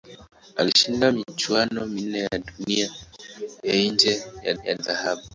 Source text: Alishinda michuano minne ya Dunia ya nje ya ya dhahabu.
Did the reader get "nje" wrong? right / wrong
right